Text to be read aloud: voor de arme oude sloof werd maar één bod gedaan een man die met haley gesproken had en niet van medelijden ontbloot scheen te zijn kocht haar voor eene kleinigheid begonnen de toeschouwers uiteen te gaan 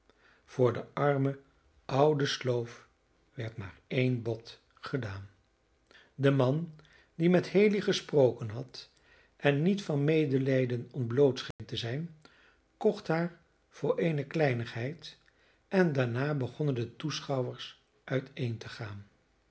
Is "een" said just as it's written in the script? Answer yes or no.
no